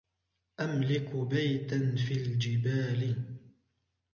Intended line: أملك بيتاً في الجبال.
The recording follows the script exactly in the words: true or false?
true